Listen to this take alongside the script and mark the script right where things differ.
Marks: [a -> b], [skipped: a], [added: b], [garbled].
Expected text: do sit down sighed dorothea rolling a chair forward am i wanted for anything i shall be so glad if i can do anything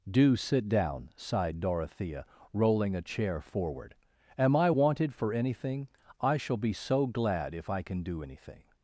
do sit down sighed dorothea rolling a chair forward am i wanted for anything i shall be so glad if i can do anything